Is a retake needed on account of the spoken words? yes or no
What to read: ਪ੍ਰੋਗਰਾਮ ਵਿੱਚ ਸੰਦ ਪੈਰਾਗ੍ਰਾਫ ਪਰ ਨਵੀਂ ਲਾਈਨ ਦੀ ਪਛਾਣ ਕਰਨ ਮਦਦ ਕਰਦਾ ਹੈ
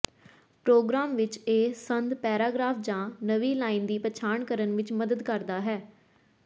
yes